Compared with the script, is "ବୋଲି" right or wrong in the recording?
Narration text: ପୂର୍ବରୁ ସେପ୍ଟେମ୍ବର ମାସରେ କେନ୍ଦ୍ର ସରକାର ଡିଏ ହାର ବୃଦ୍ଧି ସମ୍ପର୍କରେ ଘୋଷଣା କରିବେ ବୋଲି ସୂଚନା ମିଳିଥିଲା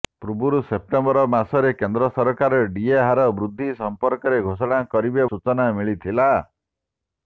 wrong